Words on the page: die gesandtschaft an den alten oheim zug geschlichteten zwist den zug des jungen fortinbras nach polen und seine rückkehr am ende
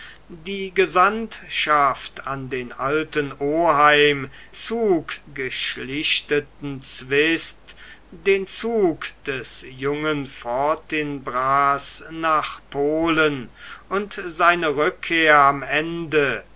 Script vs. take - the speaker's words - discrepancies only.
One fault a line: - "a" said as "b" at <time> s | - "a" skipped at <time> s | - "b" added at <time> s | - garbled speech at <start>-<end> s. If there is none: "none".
none